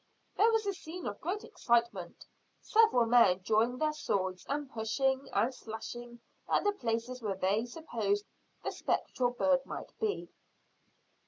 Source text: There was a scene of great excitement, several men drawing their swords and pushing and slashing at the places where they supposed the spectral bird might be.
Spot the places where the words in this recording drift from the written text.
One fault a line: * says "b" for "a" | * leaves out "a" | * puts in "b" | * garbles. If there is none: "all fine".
all fine